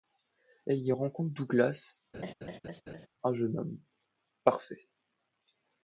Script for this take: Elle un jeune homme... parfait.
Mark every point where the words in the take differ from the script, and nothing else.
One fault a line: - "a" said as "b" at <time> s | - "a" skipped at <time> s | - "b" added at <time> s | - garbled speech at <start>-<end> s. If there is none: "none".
- "y rencontre Douglas" added at 0.8 s